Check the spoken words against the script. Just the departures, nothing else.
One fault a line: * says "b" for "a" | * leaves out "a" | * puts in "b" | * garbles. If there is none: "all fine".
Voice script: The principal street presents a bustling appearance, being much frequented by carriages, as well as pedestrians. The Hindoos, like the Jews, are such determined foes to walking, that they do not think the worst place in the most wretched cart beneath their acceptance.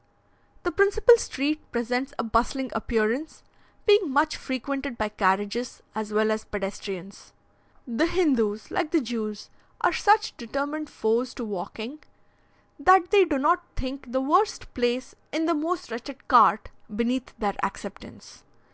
all fine